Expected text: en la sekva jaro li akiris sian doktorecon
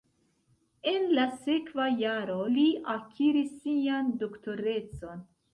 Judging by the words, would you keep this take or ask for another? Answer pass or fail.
pass